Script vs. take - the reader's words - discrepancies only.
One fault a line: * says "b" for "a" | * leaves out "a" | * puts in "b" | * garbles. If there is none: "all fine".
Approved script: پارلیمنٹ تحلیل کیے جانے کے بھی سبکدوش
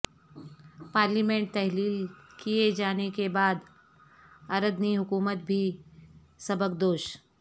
* puts in "بعد اردنی حکومت"